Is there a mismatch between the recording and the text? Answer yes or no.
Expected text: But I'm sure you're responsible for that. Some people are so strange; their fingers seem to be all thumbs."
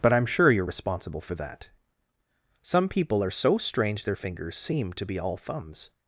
no